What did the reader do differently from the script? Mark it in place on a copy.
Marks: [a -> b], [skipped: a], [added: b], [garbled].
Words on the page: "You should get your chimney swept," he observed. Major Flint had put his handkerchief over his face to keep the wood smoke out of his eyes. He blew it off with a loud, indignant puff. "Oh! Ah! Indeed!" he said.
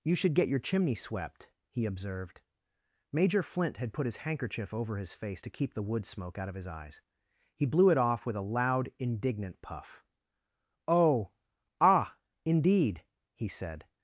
"You should get your chimney swept," he observed. Major Flint had put his handkerchief over his face to keep the wood smoke out of his eyes. He blew it off with a loud, indignant puff. "Oh! Ah! Indeed!" he said.